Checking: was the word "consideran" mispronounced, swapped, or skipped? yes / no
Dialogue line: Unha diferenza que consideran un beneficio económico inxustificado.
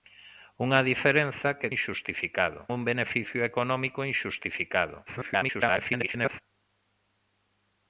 yes